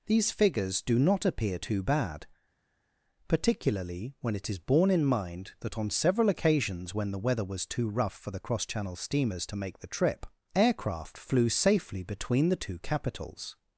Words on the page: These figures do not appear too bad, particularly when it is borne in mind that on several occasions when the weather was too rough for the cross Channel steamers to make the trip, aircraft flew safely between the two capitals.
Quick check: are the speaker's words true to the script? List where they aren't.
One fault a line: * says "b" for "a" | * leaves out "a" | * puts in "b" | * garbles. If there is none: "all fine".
all fine